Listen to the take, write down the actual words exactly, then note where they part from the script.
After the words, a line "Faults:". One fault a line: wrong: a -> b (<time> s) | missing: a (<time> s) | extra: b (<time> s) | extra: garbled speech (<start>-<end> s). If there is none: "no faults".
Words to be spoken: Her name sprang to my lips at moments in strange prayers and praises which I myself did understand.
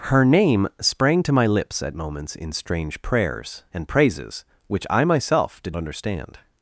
Her name sprang to my lips at moments in strange prayers and praises which I myself did understand.
Faults:
no faults